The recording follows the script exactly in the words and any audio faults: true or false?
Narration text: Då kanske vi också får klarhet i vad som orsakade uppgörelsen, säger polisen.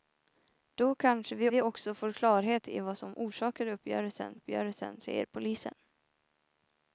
false